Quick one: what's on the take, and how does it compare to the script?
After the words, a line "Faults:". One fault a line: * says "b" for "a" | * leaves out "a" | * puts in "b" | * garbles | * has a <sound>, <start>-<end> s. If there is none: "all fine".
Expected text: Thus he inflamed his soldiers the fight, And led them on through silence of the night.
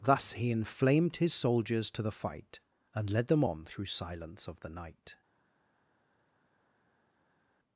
Thus he inflamed his soldiers to the fight, And led them on through silence of the night.
Faults:
* puts in "to"